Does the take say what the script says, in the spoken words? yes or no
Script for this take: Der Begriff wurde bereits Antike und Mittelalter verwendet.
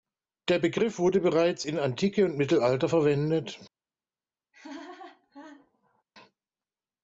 no